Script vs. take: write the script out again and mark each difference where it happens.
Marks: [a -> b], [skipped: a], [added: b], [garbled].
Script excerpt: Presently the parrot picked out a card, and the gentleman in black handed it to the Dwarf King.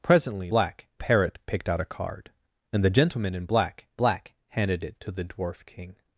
Presently [the -> black] parrot picked out a card, and the gentleman in black [added: black] handed it to the Dwarf King.